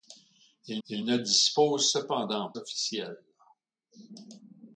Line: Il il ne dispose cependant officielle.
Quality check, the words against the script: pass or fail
pass